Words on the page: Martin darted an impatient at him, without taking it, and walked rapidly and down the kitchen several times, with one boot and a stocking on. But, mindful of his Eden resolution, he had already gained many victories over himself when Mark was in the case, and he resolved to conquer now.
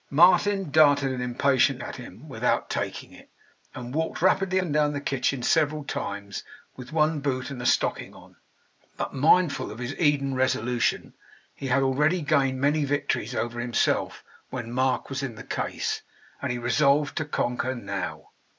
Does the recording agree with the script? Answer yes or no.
yes